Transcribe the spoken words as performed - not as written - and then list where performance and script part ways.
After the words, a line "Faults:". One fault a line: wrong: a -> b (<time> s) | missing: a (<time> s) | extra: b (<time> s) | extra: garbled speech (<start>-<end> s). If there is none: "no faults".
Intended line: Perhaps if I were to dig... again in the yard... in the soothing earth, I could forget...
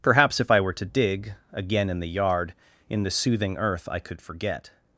Perhaps if I were to dig... again in the yard... in the soothing earth, I could forget...
Faults:
no faults